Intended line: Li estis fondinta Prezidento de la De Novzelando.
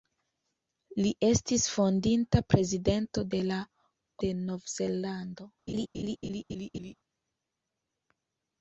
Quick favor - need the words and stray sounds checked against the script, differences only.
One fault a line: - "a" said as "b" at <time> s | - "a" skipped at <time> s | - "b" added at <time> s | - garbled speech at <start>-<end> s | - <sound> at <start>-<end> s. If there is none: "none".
- laugh at 5.7-6.9 s